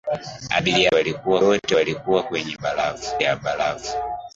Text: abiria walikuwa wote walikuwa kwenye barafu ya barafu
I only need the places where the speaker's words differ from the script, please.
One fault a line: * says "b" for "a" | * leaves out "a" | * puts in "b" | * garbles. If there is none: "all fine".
all fine